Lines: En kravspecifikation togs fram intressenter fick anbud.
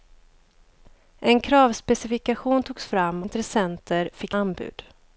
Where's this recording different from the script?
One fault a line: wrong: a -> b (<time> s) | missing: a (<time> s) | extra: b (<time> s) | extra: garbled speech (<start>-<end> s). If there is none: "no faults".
no faults